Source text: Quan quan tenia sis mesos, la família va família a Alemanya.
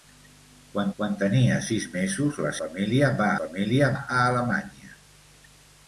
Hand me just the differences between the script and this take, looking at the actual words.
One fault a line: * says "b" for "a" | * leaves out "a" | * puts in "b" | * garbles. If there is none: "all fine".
all fine